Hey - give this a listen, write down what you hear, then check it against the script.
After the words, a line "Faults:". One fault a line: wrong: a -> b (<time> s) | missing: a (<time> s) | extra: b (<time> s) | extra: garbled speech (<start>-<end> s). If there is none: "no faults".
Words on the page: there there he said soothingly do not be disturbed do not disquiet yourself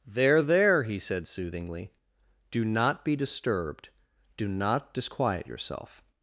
there there he said soothingly do not be disturbed do not disquiet yourself
Faults:
no faults